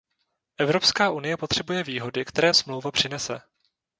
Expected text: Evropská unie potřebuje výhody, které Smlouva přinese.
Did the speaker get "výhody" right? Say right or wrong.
right